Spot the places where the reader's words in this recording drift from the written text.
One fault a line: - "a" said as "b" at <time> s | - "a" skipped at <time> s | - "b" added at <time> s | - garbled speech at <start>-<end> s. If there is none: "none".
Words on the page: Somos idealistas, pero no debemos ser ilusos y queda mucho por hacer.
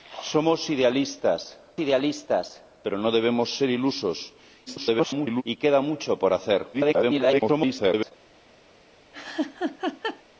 - "idealistas" added at 1.8 s
- garbled speech at 4.7-5.4 s
- garbled speech at 6.7-8.1 s